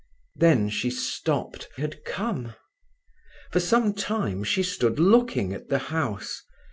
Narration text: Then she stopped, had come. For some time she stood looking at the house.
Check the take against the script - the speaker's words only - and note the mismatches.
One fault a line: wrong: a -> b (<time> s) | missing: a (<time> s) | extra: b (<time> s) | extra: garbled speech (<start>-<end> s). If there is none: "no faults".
no faults